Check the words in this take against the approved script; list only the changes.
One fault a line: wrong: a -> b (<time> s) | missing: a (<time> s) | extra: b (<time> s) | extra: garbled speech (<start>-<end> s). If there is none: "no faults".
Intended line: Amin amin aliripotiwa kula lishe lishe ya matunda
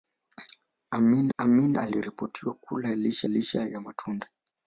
no faults